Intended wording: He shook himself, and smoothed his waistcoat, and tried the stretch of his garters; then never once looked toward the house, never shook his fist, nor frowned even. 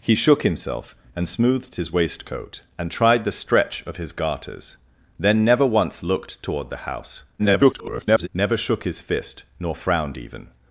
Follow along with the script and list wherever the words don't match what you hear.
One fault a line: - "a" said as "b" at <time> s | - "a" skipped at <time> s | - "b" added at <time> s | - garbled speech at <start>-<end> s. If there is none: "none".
- garbled speech at 7.4-8.3 s